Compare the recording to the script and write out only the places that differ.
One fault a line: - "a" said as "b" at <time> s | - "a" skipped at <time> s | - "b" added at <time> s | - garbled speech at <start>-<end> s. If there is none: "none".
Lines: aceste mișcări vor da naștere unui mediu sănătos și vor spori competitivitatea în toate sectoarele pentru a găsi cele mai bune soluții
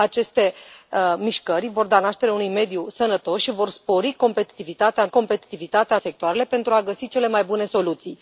- "toate" said as "competitivitatea" at 5.1 s